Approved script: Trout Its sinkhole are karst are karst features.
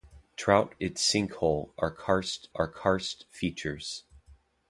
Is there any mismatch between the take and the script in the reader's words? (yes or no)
no